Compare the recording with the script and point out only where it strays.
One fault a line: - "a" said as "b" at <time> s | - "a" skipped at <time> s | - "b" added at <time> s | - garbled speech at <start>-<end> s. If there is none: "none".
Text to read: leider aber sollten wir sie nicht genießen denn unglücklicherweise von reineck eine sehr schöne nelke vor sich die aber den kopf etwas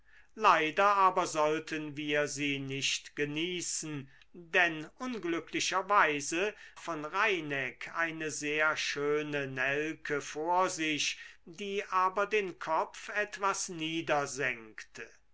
none